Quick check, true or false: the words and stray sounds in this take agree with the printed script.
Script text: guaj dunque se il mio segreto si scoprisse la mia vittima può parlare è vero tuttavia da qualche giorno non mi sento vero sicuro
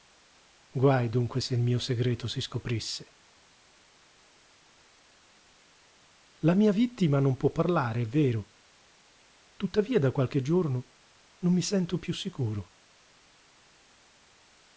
false